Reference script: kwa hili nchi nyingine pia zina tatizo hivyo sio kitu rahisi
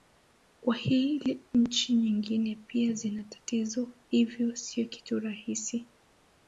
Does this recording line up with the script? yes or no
yes